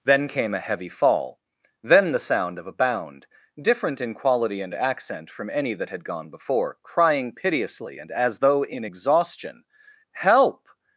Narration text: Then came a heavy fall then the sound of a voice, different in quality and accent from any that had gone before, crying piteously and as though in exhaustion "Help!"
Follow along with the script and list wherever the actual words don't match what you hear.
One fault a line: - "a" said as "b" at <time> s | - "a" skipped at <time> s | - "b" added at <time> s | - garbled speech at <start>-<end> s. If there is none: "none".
- "voice" said as "bound" at 2.7 s